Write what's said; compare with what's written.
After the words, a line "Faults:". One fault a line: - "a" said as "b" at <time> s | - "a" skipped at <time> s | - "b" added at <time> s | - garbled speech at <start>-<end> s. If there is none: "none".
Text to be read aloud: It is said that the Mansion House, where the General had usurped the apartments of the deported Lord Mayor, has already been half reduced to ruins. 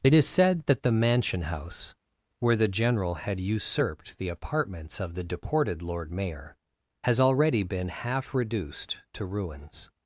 It is said that the Mansion House, where the General had usurped the apartments of the deported Lord Mayor, has already been half reduced to ruins.
Faults:
none